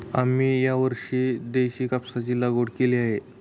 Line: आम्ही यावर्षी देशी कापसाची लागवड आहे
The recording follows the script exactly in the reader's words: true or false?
false